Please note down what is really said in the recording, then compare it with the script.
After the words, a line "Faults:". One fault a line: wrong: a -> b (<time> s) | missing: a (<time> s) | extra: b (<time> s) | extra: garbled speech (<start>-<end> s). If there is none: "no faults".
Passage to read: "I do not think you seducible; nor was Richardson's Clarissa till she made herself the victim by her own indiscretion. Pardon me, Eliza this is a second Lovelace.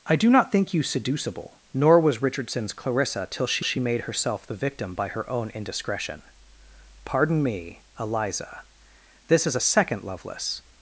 "I do not think you seducible; nor was Richardson's Clarissa till she she made herself the victim by her own indiscretion. Pardon me, Eliza this is a second Lovelace.
Faults:
extra: she (3.6 s)